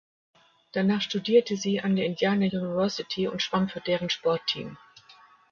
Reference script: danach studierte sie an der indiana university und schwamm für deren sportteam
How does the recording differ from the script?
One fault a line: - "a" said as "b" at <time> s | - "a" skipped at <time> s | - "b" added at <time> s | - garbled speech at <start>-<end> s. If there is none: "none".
none